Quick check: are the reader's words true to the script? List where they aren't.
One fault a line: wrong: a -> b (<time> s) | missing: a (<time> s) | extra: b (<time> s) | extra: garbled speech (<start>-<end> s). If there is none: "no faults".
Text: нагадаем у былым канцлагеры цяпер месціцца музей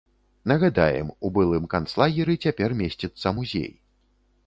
no faults